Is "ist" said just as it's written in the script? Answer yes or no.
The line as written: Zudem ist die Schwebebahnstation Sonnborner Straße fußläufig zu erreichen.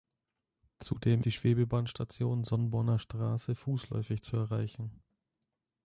no